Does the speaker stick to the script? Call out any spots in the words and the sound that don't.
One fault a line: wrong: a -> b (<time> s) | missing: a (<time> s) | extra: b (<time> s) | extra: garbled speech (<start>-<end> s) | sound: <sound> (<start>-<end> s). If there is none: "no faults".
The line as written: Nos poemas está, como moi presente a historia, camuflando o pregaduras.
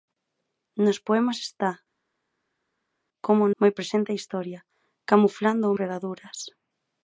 no faults